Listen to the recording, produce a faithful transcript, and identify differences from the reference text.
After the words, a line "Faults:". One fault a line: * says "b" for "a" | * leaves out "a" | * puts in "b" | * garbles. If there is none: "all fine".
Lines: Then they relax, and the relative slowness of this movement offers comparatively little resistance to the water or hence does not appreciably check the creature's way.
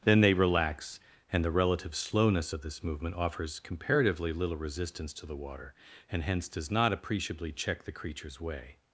Then they relax, and the relative slowness of this movement offers comparatively little resistance to the water and hence does not appreciably check the creature's way.
Faults:
* says "and" for "or"